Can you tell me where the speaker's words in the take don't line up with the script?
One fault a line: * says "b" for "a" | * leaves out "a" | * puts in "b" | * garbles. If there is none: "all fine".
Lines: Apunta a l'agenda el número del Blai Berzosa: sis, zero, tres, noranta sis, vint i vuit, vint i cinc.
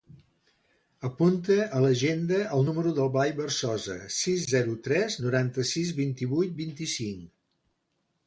all fine